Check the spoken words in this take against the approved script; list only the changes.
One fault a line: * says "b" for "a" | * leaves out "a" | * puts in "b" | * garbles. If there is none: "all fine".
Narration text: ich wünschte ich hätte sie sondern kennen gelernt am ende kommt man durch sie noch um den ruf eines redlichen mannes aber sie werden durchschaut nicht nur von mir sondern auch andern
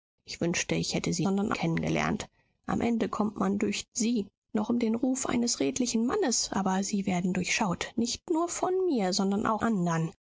all fine